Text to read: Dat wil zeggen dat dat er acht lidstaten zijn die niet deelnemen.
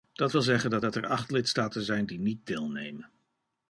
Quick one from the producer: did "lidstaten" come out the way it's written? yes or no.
yes